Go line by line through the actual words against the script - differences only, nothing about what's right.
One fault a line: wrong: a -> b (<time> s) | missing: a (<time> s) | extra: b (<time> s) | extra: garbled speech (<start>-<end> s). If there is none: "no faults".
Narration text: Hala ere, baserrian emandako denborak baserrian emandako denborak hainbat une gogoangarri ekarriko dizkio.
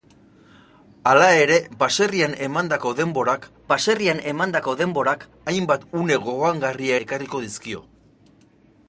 no faults